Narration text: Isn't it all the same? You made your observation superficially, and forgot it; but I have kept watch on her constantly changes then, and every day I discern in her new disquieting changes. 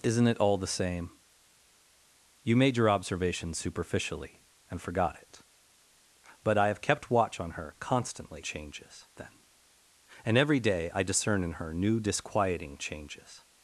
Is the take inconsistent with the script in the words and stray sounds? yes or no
no